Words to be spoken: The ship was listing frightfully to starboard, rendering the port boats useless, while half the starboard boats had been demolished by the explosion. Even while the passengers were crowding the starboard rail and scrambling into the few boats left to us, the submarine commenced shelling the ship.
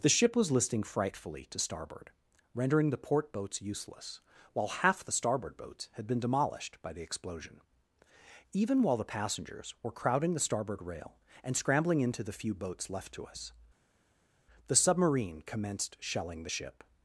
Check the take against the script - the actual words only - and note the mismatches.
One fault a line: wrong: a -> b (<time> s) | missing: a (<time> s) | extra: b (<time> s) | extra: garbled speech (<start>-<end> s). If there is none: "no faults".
no faults